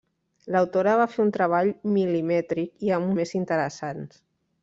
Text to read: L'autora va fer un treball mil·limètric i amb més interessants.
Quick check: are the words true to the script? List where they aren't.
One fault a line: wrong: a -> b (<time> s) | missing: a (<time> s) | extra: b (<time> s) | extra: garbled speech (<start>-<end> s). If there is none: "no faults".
no faults